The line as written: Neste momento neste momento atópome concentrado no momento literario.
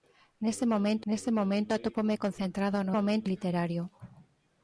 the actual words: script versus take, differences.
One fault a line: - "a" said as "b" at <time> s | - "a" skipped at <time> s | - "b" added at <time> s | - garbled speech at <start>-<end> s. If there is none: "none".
none